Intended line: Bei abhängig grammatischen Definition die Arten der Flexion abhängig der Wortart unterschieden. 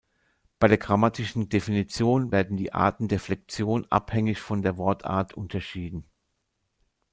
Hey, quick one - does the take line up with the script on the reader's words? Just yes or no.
no